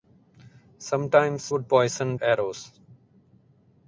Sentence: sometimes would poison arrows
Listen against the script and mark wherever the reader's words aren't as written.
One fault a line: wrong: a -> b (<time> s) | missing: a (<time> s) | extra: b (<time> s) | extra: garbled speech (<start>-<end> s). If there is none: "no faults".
no faults